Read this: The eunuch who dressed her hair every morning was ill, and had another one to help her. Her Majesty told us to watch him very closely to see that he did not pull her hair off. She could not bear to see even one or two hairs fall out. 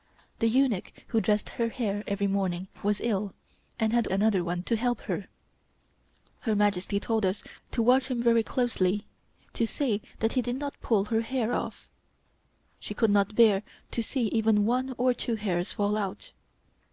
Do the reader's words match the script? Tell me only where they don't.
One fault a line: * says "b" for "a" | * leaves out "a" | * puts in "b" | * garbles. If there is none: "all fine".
all fine